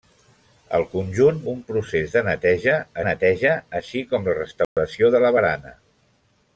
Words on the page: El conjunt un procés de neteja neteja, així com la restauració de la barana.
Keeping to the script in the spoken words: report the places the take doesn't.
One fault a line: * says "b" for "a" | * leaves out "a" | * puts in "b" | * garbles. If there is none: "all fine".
all fine